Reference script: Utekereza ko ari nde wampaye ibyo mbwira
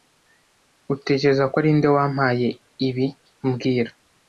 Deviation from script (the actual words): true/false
true